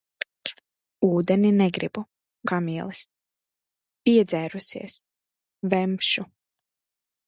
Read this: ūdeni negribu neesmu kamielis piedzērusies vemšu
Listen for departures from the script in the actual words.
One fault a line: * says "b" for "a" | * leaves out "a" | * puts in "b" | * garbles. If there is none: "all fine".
* leaves out "neesmu"